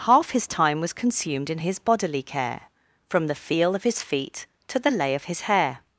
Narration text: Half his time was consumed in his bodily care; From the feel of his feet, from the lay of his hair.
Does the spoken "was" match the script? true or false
true